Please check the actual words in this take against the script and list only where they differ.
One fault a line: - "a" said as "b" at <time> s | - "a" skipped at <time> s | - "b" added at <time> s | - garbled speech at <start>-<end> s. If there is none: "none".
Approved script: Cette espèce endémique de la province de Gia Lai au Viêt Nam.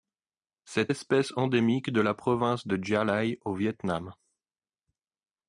none